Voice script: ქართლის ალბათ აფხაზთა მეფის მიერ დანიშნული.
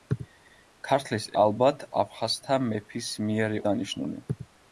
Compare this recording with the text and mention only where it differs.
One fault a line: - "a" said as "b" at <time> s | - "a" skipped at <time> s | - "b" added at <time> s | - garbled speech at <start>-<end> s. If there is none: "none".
none